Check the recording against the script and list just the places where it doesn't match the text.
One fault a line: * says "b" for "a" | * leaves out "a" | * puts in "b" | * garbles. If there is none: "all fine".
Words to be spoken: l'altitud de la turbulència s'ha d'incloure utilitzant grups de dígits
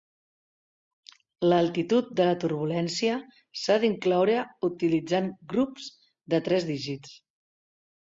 * puts in "tres"